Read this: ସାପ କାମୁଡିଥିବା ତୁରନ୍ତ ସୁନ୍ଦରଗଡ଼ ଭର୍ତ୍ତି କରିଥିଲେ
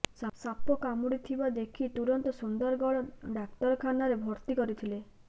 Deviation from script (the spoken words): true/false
true